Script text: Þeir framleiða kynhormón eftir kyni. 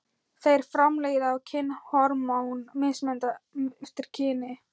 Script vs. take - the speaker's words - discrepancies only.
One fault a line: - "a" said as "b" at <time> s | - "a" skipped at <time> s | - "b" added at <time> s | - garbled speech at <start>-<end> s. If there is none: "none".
none